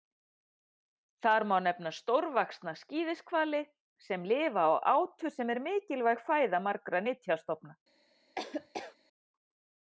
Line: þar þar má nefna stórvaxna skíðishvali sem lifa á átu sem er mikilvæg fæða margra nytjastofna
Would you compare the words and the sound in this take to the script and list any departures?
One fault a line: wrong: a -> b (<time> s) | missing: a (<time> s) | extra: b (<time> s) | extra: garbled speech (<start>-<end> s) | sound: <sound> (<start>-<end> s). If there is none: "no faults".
missing: þar (1.4 s)
sound: laugh (8.4-9.0 s)